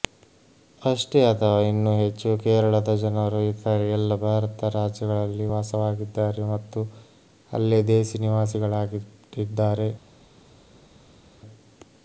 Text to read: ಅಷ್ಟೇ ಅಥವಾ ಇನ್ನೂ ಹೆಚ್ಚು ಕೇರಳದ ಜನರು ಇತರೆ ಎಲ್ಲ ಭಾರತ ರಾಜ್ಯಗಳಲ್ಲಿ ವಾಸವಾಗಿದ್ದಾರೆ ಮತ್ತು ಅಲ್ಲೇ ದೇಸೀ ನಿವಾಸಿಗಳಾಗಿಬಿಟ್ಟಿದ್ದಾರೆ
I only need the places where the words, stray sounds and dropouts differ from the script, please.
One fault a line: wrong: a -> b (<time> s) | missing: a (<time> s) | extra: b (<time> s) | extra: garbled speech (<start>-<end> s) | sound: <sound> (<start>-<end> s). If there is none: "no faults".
no faults